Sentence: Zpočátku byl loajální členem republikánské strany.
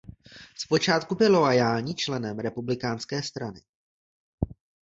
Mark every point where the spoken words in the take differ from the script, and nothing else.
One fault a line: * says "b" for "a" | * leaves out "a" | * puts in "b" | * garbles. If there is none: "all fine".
all fine